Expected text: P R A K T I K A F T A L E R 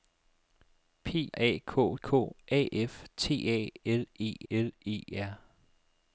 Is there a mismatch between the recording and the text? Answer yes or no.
yes